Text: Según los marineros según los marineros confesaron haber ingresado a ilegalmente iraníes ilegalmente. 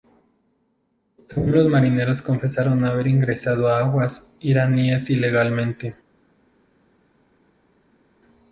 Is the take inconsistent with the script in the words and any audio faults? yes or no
yes